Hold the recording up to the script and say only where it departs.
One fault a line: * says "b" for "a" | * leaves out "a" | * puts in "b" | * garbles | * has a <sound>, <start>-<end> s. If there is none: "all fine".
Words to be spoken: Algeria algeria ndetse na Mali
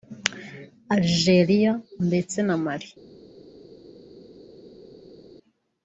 * leaves out "algeria"